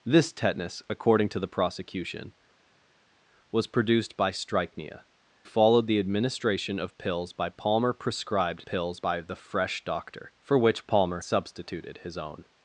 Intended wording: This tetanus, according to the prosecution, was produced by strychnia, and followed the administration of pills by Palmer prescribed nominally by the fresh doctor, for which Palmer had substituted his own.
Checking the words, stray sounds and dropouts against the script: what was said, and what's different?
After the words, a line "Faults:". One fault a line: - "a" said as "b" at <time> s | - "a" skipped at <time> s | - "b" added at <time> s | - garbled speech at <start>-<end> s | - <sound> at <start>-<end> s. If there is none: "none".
This tetanus, according to the prosecution, was produced by strychnia, followed the administration of pills by Palmer prescribed pills by the fresh doctor, for which Palmer substituted his own.
Faults:
- "and" skipped at 5.0 s
- "nominally" said as "pills" at 8.6 s
- "had" skipped at 11.2 s